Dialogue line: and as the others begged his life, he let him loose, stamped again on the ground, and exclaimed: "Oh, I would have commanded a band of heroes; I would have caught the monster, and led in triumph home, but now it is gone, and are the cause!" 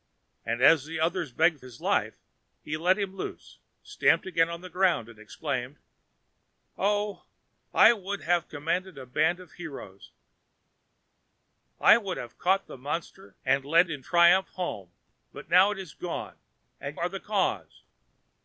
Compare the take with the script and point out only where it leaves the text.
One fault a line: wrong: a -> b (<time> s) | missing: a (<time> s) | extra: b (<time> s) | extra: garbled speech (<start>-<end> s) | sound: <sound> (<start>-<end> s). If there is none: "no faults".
no faults